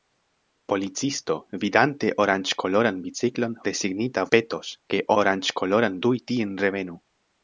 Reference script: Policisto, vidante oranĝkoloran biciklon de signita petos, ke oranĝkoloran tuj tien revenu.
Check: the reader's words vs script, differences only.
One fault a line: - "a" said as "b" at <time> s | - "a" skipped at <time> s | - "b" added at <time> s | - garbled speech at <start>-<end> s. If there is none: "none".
none